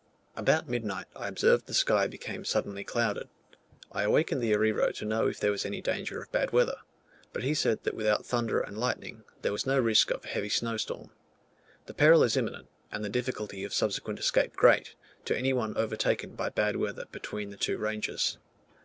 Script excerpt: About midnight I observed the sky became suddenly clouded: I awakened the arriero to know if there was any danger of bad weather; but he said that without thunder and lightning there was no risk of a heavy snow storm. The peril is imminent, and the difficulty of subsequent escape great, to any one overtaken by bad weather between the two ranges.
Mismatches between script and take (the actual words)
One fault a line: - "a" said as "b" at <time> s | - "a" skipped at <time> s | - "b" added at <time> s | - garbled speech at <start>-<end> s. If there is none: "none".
none